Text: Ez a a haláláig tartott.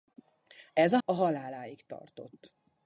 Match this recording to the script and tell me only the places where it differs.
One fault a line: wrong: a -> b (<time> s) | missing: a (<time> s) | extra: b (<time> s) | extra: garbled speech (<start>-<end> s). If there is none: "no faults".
no faults